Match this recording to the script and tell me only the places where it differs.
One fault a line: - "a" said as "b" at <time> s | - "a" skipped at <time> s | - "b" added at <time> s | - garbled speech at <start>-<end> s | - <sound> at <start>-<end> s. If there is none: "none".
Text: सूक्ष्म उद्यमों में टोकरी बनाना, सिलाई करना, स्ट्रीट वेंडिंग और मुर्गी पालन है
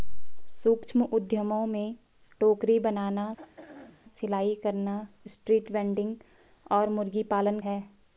- throat clearing at 3.4-4.0 s